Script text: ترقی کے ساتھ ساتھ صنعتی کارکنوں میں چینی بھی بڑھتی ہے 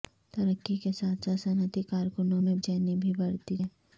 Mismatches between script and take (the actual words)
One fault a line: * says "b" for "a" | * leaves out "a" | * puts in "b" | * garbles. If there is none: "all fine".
all fine